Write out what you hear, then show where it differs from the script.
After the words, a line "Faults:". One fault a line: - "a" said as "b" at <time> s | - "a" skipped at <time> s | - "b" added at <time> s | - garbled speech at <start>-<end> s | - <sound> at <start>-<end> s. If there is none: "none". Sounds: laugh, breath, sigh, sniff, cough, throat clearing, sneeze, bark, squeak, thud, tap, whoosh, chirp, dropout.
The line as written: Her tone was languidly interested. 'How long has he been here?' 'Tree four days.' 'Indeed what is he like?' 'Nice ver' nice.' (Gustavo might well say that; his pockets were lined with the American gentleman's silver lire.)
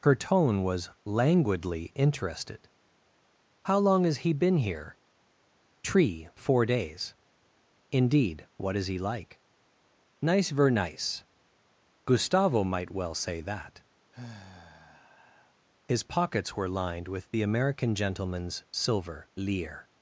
Her tone was languidly interested. 'How long has he been here?' 'Tree four days.' 'Indeed what is he like?' 'Nice ver' nice.' (Gustavo might well say that; his pockets were lined with the American gentleman's silver lire.)
Faults:
- sigh at 14.1-15.6 s